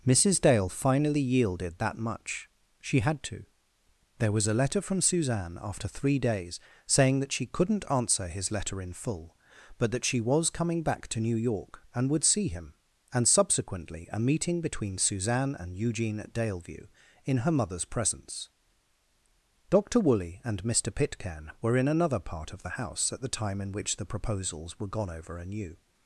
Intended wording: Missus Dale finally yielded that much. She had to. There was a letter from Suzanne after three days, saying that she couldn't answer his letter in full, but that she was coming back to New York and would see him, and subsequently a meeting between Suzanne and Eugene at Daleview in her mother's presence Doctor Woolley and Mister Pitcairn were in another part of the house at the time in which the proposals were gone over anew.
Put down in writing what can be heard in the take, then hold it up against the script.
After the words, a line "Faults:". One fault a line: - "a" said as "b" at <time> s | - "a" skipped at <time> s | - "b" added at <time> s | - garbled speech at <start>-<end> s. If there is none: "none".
Missus Dale finally yielded that much. She had to. There was a letter from Suzanne after three days, saying that she couldn't answer his letter in full, but that she was coming back to New York and would see him, and subsequently a meeting between Suzanne and Eugene at Daleview in her mother's presence Doctor Woolley and Mister Pitcairn were in another part of the house at the time in which the proposals were gone over anew.
Faults:
none